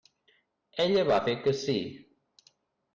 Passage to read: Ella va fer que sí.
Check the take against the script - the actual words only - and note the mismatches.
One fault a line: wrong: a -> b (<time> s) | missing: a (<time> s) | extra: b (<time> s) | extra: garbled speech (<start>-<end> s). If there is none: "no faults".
no faults